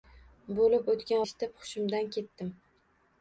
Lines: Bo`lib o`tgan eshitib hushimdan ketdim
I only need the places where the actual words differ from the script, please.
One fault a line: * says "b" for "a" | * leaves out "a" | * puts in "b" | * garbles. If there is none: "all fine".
all fine